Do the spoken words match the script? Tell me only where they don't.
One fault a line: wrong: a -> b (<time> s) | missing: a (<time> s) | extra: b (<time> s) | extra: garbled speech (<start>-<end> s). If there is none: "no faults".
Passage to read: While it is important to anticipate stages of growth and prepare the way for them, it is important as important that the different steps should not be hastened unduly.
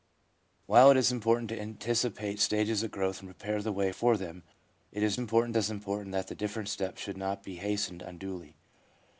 no faults